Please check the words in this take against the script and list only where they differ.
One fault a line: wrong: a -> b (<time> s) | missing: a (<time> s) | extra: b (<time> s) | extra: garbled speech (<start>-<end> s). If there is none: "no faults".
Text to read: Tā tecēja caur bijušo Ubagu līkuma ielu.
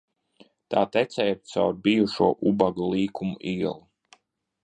no faults